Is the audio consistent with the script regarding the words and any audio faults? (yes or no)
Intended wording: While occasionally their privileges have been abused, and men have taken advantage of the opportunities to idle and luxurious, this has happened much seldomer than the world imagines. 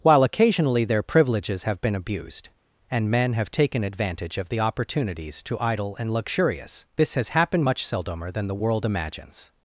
yes